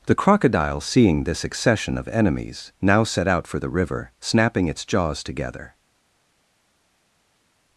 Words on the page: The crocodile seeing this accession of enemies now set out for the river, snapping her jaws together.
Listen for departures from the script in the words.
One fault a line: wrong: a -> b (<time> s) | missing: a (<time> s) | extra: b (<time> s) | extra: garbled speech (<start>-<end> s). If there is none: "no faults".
wrong: her -> its (4.7 s)